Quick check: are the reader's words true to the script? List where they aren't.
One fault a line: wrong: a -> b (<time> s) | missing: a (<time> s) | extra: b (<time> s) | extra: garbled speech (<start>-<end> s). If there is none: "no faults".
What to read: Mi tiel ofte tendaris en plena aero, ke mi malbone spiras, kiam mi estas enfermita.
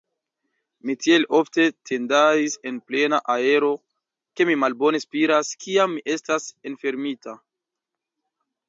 no faults